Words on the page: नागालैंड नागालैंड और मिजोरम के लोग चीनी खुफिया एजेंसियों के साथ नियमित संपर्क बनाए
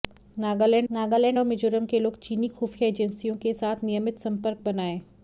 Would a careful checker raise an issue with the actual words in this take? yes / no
no